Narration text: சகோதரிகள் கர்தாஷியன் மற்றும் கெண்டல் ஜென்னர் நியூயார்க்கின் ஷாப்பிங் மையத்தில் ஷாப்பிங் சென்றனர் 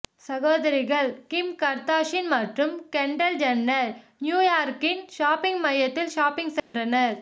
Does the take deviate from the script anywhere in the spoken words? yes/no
yes